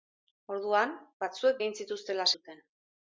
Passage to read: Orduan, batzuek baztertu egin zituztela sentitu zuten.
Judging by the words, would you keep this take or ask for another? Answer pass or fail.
fail